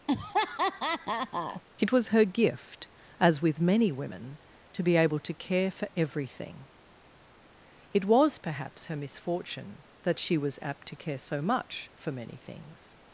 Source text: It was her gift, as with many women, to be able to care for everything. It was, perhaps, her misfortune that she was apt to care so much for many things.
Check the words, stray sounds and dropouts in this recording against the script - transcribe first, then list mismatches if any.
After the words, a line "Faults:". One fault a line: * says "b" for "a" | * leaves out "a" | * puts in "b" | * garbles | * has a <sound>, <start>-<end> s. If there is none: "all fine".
It was her gift, as with many women, to be able to care for everything. It was, perhaps, her misfortune that she was apt to care so much for many things.
Faults:
* has a laugh, 0.1-1.6 s